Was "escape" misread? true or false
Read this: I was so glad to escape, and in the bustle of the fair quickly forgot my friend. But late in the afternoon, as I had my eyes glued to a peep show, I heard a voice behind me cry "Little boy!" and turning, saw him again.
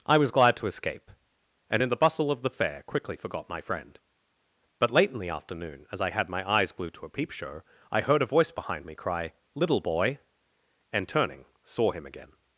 false